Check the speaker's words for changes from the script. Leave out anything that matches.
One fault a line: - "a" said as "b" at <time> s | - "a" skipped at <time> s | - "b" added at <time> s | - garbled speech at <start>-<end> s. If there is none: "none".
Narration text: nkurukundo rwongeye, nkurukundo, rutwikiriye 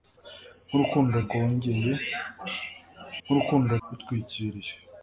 none